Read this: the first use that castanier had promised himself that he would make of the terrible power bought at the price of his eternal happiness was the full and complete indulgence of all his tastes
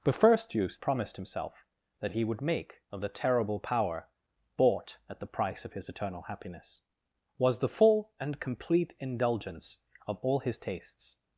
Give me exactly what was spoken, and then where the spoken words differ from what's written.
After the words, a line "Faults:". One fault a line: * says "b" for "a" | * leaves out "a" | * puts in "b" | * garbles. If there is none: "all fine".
the first use promised himself that he would make of the terrible power bought at the price of his eternal happiness was the full and complete indulgence of all his tastes
Faults:
* leaves out "that castanier had"